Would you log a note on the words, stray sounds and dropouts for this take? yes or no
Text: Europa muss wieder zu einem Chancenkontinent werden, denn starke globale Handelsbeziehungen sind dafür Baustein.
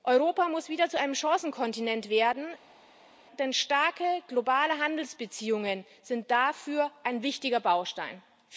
yes